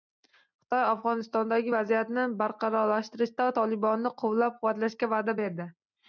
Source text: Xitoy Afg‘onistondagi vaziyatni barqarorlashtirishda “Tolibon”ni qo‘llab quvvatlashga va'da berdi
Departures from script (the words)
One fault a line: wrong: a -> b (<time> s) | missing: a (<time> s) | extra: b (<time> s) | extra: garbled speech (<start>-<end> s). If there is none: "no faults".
no faults